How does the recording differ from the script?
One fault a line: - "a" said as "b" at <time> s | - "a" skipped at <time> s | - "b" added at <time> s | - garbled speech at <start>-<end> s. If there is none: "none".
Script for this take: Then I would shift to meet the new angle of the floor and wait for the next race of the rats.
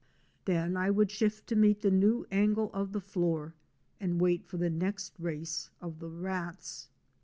none